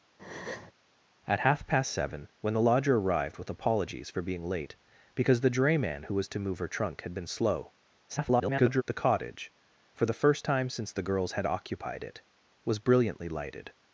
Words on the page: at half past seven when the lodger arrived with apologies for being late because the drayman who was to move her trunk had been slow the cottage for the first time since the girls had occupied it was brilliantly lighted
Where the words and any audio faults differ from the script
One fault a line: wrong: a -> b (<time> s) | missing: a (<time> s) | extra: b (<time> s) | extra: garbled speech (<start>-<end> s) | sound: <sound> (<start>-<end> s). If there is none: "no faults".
sound: breath (0.2-0.7 s)
extra: garbled speech (8.1-8.8 s)